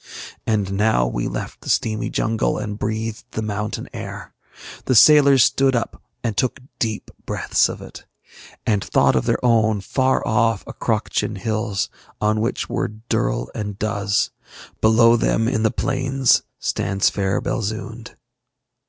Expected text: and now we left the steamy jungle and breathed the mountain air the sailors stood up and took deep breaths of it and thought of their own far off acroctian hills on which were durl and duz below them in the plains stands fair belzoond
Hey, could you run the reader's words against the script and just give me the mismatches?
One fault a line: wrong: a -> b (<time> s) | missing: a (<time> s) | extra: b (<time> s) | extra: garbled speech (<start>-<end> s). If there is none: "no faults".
no faults